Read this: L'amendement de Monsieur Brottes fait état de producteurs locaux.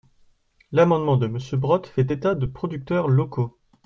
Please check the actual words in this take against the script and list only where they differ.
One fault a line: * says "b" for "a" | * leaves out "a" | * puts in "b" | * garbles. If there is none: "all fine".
all fine